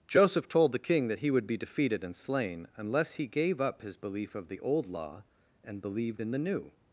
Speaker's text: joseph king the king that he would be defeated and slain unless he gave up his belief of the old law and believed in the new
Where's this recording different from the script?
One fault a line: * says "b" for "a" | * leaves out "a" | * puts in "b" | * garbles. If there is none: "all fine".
* says "told" for "king"